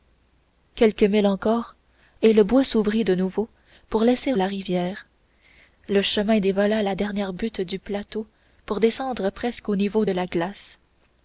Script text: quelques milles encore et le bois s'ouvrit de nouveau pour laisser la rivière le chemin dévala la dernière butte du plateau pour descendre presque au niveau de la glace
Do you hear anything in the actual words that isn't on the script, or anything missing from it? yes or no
no